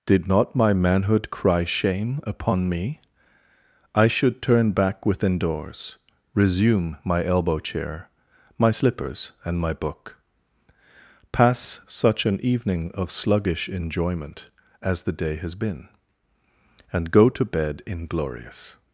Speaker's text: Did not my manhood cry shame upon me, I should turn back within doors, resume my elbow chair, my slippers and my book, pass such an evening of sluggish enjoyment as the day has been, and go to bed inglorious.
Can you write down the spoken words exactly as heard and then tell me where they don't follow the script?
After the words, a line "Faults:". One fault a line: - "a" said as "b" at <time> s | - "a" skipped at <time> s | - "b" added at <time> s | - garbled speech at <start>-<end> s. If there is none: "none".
Did not my manhood cry shame upon me, I should turn back within doors, resume my elbow chair, my slippers and my book, pass such an evening of sluggish enjoyment as the day has been, and go to bed inglorious.
Faults:
none